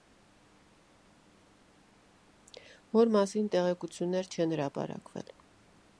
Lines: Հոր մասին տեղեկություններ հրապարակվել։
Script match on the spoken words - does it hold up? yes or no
no